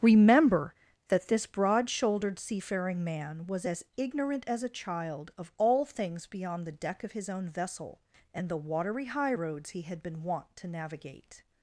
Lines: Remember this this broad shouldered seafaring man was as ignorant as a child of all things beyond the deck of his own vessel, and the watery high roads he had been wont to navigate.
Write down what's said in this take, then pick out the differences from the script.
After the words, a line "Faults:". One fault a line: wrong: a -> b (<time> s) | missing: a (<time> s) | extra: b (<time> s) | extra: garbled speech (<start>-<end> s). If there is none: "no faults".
Remember that this broad shouldered seafaring man was as ignorant as a child of all things beyond the deck of his own vessel, and the watery high roads he had been wont to navigate.
Faults:
wrong: this -> that (1.1 s)